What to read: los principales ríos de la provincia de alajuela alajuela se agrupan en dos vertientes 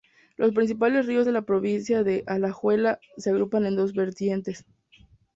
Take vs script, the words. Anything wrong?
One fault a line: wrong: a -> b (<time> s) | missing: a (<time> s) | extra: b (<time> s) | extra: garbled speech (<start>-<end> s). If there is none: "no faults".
missing: alajuela (3.0 s)